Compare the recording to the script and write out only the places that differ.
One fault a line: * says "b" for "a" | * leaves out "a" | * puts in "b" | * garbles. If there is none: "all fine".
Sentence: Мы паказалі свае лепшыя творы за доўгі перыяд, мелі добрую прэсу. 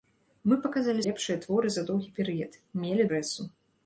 * leaves out "свае"
* leaves out "добрую"